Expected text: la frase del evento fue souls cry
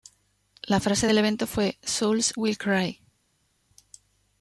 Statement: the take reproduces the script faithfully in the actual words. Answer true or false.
false